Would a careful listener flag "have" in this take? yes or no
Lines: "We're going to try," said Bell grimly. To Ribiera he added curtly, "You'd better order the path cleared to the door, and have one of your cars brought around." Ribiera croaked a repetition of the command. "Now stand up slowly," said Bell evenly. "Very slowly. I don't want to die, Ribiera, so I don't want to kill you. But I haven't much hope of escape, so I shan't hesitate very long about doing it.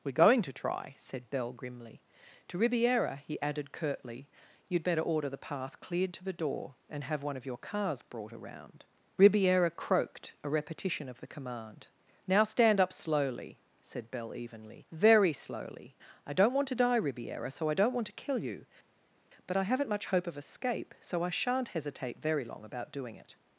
no